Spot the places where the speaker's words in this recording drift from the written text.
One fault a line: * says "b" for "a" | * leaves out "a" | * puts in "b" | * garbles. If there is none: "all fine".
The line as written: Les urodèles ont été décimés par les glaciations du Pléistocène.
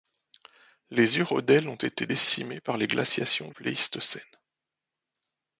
* leaves out "du"